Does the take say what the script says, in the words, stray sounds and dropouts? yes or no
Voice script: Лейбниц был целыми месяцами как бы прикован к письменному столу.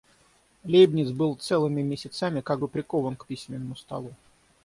yes